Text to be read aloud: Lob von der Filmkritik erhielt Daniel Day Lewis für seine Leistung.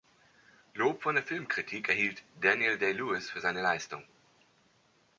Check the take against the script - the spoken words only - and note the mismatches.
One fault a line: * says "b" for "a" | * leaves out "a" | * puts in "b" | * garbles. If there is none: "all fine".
all fine